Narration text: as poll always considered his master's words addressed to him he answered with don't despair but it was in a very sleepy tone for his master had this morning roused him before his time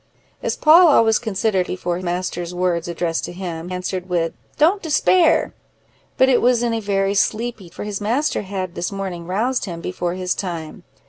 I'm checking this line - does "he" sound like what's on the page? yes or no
no